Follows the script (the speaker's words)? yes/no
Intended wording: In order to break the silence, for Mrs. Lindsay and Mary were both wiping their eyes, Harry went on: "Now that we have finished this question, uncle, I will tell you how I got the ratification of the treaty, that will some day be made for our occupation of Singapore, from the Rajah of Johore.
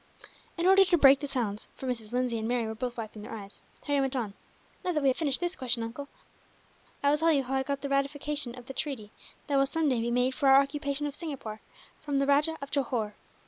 yes